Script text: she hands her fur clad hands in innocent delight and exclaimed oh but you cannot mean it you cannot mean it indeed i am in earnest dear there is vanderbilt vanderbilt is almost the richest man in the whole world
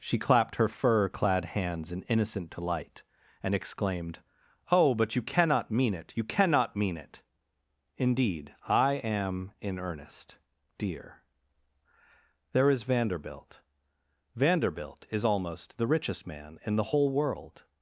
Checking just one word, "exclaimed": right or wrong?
right